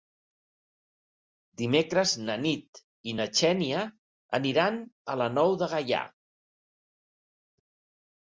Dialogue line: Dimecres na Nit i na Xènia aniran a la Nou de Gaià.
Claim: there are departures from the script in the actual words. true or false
false